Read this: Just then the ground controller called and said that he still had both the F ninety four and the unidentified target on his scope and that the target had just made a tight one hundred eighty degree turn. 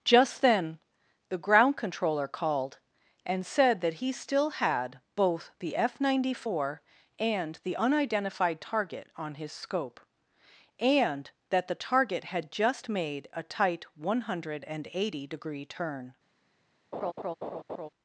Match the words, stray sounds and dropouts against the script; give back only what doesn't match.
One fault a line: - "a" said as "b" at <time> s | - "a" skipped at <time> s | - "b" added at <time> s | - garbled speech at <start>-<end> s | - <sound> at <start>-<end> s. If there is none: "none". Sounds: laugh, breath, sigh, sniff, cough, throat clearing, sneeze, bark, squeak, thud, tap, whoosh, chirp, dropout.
- laugh at 16.9-17.9 s